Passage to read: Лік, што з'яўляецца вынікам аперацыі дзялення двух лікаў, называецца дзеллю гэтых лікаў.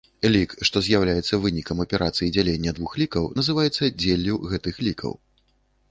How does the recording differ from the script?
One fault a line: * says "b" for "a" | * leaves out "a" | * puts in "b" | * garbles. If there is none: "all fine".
all fine